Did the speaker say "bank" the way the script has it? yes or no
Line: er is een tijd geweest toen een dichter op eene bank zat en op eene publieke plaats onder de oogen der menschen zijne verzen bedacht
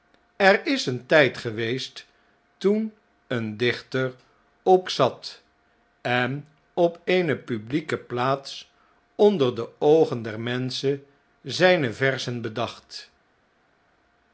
no